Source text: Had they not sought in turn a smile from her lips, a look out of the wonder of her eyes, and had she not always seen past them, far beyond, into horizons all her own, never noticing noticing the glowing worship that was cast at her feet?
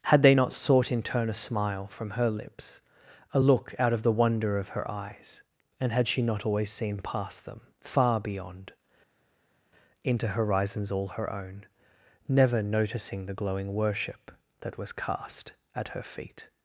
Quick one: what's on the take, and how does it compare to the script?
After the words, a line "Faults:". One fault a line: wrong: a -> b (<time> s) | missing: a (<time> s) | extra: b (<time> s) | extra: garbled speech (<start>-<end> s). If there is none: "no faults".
Had they not sought in turn a smile from her lips, a look out of the wonder of her eyes, and had she not always seen past them, far beyond, into horizons all her own, never noticing the glowing worship that was cast at her feet?
Faults:
missing: noticing (13.3 s)